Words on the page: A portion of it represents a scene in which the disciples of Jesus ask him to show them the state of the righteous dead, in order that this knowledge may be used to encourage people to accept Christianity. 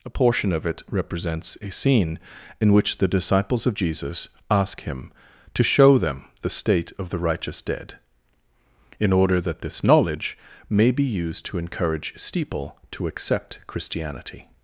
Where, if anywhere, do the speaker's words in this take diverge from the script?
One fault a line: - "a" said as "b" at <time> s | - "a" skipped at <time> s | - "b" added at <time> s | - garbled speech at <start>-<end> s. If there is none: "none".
- "people" said as "steeple" at 12.2 s